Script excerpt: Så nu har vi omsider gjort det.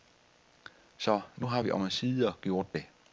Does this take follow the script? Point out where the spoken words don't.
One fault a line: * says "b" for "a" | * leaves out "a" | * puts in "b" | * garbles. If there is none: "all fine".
all fine